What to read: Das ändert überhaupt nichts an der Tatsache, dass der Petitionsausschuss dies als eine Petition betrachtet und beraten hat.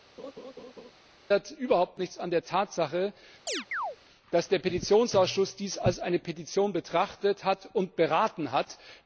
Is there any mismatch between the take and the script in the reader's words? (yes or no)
no